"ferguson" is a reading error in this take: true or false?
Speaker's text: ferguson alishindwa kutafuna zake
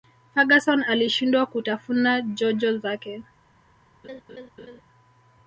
false